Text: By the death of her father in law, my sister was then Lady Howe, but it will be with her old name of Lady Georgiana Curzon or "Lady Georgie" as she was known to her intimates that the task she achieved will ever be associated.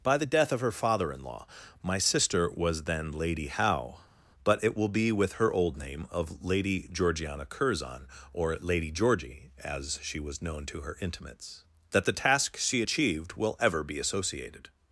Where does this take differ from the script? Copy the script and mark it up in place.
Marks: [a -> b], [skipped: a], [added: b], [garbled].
By the death of her father in law, my sister was then Lady Howe, but it will be with her old name of Lady Georgiana Curzon or "Lady Georgie" as she was known to her intimates that the task she achieved will ever be associated.